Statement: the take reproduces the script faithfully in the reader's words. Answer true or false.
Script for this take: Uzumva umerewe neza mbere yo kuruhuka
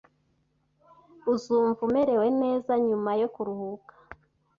false